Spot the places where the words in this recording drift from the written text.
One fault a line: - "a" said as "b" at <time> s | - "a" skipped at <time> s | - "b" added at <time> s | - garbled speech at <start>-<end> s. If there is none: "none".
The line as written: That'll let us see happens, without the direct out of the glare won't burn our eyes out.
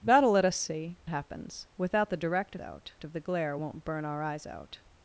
none